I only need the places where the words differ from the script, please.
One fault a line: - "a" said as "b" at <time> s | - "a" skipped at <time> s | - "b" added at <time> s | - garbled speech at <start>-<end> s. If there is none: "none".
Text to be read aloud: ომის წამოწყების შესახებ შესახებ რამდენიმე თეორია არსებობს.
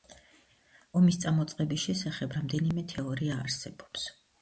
- "შესახებ" skipped at 2.4 s